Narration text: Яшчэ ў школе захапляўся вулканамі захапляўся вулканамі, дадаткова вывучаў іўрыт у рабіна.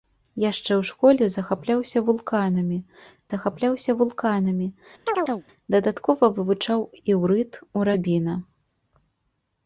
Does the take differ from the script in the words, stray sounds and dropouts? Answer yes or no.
yes